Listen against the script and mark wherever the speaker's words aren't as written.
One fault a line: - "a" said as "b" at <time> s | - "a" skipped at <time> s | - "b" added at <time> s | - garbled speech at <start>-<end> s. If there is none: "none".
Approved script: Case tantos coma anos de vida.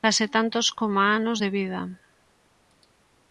none